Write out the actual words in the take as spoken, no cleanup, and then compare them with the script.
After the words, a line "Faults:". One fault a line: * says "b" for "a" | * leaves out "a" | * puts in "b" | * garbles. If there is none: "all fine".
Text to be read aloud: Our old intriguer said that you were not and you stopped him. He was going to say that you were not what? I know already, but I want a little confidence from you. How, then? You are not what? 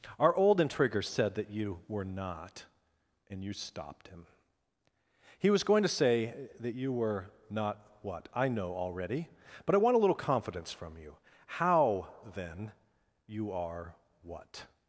Our old intriguer said that you were not and you stopped him. He was going to say that you were not what? I know already, but I want a little confidence from you. How, then? You are what?
Faults:
* leaves out "not"